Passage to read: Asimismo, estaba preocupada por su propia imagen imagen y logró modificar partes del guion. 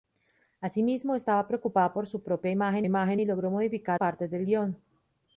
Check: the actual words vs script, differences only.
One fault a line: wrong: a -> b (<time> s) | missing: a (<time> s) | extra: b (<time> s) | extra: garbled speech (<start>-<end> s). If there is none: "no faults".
no faults